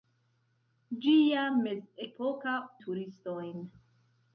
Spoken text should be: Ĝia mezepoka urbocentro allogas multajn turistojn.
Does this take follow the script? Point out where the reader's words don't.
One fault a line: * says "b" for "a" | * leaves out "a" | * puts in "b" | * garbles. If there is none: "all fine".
* leaves out "urbocentro allogas multajn"